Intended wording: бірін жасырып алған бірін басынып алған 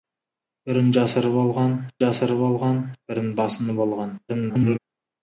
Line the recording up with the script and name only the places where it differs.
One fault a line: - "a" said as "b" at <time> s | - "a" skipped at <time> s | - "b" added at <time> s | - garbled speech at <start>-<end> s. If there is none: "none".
- "жасырып алған" added at 2.0 s
- garbled speech at 4.3-4.8 s